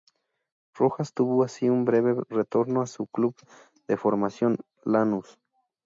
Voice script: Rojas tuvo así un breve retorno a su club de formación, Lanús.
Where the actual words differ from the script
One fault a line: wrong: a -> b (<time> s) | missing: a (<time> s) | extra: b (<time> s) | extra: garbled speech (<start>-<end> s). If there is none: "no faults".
no faults